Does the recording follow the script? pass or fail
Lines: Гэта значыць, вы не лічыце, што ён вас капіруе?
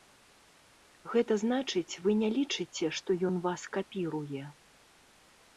pass